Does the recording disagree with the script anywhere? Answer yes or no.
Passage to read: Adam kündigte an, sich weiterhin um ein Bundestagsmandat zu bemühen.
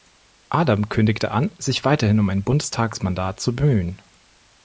no